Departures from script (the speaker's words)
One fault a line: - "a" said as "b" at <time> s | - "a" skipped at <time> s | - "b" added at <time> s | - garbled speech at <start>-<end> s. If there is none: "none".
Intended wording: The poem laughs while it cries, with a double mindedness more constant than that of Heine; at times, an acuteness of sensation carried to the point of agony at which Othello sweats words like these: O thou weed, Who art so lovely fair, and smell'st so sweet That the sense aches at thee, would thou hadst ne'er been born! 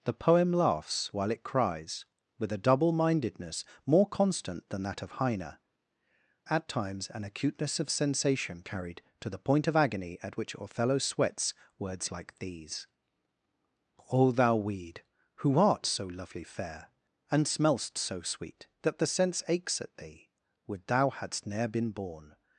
none